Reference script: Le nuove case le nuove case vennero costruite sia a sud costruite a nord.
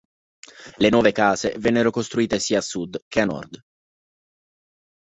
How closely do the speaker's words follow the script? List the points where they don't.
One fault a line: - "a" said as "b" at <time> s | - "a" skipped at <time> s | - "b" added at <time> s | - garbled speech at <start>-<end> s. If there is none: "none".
- "le nuove case" skipped at 1.5 s
- "costruite" said as "che" at 3.1 s